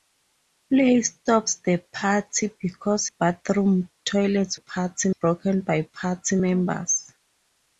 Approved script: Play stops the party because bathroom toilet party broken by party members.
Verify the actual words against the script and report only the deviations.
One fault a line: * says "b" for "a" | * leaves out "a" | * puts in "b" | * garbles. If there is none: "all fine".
all fine